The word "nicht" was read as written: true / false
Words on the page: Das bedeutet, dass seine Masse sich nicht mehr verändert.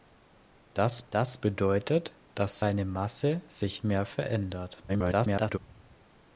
false